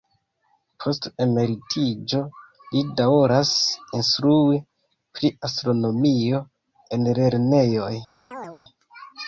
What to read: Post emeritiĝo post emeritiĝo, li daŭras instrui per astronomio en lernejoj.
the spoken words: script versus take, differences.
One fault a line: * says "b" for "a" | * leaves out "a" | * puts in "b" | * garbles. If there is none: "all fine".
* leaves out "post emeritiĝo"
* says "pri" for "per"